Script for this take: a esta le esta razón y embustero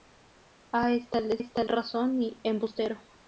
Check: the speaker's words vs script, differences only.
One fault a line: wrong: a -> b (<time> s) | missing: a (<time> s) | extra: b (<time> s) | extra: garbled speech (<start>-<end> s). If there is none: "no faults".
no faults